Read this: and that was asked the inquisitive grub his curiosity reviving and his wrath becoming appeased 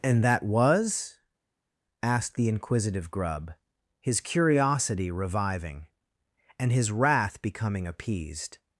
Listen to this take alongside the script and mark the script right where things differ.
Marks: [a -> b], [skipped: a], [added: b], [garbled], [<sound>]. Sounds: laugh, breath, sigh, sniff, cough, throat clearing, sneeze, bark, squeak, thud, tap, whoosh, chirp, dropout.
and that was asked the inquisitive grub his curiosity reviving and his wrath becoming appeased